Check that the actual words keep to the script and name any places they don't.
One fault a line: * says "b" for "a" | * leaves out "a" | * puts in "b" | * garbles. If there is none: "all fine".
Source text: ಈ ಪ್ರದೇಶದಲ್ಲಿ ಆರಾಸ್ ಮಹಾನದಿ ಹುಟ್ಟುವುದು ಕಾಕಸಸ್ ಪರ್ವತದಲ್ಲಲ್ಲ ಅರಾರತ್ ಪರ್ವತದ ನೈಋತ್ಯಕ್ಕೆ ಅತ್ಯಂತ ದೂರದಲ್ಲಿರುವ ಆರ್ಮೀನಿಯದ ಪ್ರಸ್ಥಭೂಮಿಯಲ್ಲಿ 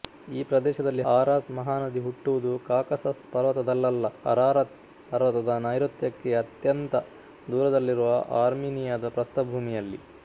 all fine